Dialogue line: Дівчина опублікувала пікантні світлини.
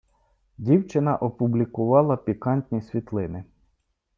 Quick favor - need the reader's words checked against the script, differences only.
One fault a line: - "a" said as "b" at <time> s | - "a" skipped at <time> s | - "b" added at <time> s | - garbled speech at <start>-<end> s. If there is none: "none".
none